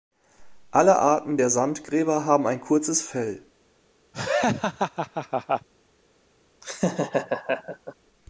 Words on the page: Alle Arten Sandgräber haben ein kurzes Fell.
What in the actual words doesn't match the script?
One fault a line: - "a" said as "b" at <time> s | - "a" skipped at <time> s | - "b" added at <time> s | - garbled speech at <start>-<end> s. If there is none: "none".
- "der" added at 1.4 s